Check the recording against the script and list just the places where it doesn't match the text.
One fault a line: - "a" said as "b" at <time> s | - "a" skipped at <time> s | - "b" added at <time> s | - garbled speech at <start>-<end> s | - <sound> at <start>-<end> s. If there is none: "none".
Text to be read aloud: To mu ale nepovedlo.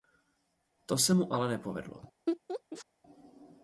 - "se" added at 1.0 s
- laugh at 2.3-2.9 s